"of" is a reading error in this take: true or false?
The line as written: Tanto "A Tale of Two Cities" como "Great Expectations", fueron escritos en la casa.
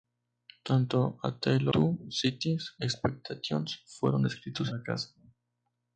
true